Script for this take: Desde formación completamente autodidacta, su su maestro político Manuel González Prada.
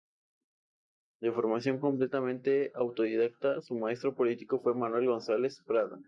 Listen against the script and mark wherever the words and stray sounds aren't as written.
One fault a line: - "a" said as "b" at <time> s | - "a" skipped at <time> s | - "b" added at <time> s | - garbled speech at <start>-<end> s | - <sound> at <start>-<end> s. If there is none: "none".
- "Desde" said as "De" at 1.2 s
- "su" skipped at 3.8 s
- "fue" added at 4.6 s